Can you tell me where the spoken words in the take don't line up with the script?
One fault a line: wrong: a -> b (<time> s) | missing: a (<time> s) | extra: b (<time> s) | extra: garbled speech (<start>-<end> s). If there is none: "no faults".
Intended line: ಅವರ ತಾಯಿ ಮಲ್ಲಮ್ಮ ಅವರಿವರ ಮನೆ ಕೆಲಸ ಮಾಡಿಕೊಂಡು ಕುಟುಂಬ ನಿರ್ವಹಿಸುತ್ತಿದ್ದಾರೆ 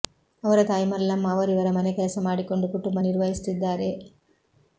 no faults